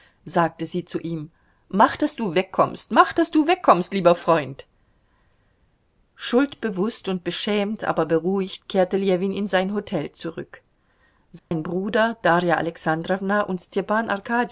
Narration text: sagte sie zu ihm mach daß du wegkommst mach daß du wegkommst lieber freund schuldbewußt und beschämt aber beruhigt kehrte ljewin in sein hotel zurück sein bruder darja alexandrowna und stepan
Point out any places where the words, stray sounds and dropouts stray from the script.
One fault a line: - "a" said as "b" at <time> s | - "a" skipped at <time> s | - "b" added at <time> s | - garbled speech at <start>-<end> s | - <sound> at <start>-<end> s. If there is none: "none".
- dropout at 11.4-11.5 s